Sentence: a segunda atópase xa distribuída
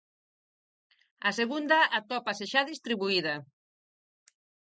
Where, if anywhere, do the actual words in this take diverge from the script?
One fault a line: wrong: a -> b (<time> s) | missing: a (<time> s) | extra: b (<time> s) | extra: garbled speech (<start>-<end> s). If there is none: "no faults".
no faults